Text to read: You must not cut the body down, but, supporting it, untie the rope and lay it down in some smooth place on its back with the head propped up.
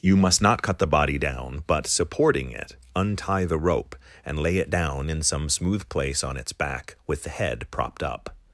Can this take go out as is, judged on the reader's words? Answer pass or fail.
pass